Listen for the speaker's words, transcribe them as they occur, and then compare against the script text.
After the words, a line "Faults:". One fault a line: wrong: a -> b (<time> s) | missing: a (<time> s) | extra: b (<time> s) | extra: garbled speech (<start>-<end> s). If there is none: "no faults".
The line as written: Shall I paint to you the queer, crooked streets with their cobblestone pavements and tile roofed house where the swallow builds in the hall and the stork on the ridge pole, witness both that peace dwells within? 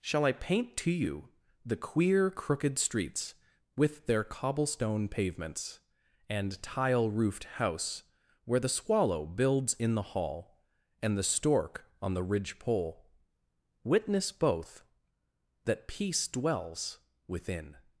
Shall I paint to you the queer, crooked streets with their cobblestone pavements and tile roofed house where the swallow builds in the hall and the stork on the ridge pole, witness both that peace dwells within?
Faults:
no faults